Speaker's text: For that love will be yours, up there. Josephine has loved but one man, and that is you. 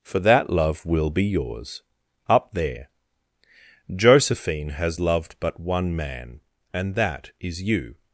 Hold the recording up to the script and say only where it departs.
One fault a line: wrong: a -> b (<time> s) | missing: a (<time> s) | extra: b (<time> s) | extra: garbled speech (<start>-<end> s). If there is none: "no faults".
no faults